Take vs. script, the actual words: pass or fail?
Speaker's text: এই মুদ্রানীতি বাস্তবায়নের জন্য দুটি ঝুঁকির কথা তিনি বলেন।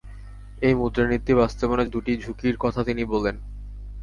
fail